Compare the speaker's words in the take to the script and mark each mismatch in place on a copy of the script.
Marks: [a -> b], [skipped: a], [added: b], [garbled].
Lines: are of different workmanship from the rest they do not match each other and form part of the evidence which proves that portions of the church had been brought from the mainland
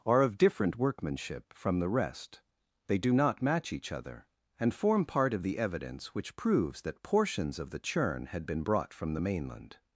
are of different workmanship from the rest they do not match each other and form part of the evidence which proves that portions of the [church -> churn] had been brought from the mainland